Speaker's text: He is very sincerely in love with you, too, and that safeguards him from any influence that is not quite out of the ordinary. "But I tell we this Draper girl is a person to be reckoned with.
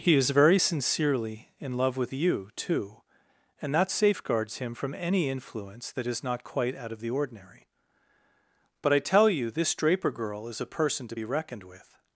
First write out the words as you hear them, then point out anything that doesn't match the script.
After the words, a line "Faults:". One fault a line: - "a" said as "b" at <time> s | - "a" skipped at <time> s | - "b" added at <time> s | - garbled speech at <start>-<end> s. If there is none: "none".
He is very sincerely in love with you, too, and that safeguards him from any influence that is not quite out of the ordinary. "But I tell you this Draper girl is a person to be reckoned with.
Faults:
- "we" said as "you" at 9.3 s